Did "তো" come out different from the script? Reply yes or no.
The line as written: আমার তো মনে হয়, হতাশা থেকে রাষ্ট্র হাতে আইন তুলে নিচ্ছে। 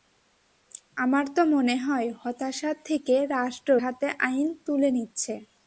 no